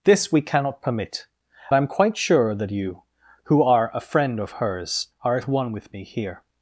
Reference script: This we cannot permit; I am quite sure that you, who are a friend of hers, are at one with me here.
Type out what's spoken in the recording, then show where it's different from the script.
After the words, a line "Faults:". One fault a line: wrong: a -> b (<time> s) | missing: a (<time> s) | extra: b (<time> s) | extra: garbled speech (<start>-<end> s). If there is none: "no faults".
This we cannot permit; I am quite sure that you, who are a friend of hers, are at one with me here.
Faults:
no faults